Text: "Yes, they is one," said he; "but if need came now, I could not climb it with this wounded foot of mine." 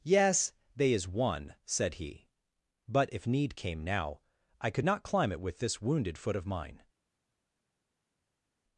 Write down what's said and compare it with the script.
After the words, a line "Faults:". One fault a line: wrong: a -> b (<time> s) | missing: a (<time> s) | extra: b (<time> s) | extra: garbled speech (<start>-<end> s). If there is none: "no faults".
"Yes, they is one," said he; "but if need came now, I could not climb it with this wounded foot of mine."
Faults:
no faults